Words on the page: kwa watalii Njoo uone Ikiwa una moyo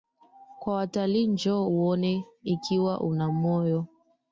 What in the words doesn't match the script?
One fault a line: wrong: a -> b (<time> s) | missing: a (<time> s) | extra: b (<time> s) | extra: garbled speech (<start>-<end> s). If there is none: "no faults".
no faults